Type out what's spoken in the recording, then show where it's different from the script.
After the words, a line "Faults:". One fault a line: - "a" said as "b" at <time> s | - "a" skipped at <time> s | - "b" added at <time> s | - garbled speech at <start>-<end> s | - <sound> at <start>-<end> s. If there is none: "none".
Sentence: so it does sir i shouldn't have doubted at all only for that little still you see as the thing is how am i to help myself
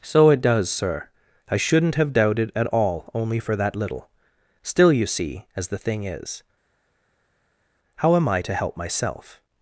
so it does sir i shouldn't have doubted at all only for that little still you see as the thing is how am i to help myself
Faults:
none